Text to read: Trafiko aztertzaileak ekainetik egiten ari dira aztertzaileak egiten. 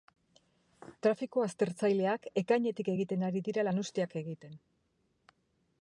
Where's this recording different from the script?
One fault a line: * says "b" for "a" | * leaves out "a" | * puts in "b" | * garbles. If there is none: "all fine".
* says "lanuzteak" for "aztertzaileak"